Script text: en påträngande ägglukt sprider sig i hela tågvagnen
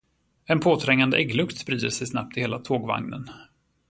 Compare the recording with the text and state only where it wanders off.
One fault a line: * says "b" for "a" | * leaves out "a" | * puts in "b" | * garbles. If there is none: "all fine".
* puts in "snabbt"